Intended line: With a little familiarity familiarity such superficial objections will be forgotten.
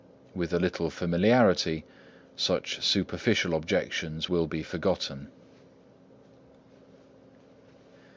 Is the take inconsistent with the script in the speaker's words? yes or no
yes